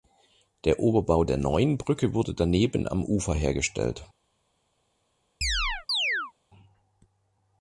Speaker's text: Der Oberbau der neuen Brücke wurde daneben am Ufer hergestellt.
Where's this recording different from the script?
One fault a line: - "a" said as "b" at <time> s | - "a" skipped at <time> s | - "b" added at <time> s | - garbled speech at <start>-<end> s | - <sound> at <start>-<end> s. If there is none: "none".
- chirp at 5.4-6.3 s